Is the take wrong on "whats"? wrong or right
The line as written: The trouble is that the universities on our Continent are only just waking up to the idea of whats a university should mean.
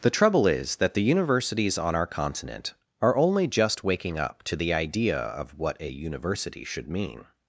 wrong